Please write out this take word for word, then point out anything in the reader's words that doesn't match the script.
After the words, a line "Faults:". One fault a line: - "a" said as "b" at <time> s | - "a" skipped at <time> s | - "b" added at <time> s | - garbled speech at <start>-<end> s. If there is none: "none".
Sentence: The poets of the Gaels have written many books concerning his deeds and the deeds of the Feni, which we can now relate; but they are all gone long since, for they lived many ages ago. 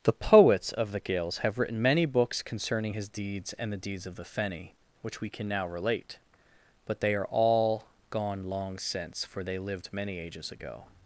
The poets of the Gaels have written many books concerning his deeds and the deeds of the Feni, which we can now relate; but they are all gone long since, for they lived many ages ago.
Faults:
none